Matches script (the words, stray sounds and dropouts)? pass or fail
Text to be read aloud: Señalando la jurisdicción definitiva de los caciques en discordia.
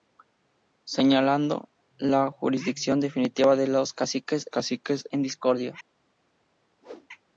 fail